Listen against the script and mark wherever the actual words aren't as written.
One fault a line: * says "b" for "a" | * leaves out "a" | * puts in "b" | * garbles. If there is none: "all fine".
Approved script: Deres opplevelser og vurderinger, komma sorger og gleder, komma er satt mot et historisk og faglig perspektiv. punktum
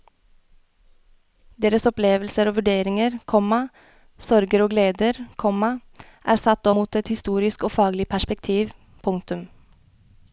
all fine